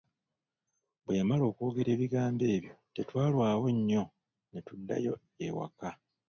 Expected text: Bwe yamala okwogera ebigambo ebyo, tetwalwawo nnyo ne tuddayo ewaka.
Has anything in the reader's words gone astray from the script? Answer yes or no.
no